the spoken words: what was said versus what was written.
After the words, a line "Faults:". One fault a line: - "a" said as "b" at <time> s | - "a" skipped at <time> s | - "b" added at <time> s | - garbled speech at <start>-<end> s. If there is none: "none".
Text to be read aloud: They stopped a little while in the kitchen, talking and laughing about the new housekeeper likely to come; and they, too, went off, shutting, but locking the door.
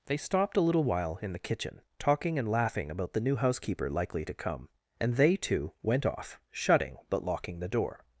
They stopped a little while in the kitchen, talking and laughing about the new housekeeper likely to come; and they, too, went off, shutting, but locking the door.
Faults:
none